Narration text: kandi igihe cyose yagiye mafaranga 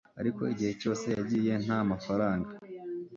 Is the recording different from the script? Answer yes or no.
yes